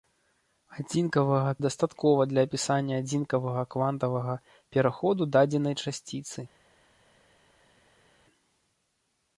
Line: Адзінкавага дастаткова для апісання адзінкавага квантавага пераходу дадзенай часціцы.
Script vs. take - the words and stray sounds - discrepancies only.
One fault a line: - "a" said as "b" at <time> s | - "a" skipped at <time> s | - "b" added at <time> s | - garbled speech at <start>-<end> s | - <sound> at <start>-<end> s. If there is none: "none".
none